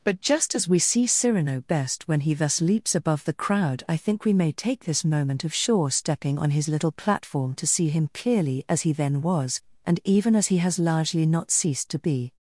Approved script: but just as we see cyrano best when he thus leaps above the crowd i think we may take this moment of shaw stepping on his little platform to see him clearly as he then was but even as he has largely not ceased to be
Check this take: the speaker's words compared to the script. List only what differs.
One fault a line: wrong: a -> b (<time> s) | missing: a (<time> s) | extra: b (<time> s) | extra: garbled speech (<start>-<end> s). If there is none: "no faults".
wrong: but -> and (9.8 s)